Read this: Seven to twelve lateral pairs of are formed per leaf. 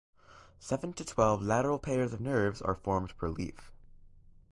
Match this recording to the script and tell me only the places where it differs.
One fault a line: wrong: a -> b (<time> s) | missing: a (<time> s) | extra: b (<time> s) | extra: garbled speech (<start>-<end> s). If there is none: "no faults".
extra: nerves (2.2 s)